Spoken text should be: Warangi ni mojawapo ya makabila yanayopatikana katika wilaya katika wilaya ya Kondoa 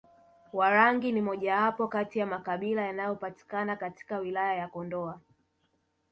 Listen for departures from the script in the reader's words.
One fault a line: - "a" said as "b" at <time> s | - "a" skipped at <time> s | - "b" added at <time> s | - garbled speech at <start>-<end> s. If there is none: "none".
- "kati" added at 1.8 s
- "katika wilaya" skipped at 4.5 s